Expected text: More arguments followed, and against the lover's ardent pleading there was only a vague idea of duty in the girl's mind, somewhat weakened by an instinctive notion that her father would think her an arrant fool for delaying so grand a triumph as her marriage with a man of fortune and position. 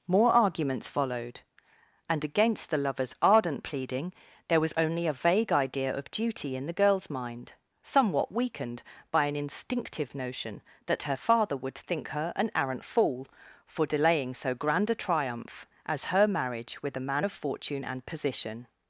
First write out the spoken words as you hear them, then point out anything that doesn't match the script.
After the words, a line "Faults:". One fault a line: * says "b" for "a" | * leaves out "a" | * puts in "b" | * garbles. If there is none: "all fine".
More arguments followed, and against the lover's ardent pleading there was only a vague idea of duty in the girl's mind, somewhat weakened by an instinctive notion that her father would think her an arrant fool for delaying so grand a triumph as her marriage with a man of fortune and position.
Faults:
all fine